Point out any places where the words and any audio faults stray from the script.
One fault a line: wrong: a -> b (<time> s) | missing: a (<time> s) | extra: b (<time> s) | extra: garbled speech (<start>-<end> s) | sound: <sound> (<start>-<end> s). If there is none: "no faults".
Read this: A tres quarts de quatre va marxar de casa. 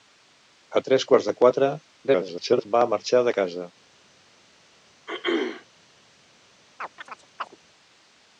extra: garbled speech (2.1-2.7 s)
sound: throat clearing (5.1-5.7 s)
sound: chirp (6.8-7.6 s)